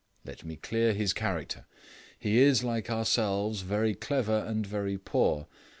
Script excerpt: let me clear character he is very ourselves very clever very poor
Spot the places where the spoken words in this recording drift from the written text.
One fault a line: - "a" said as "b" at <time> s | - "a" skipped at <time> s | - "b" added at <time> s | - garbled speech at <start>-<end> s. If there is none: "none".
- "his" added at 0.9 s
- "very" said as "like" at 2.6 s
- "and" added at 4.5 s